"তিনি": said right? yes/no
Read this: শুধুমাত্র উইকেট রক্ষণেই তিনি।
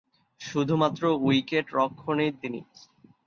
yes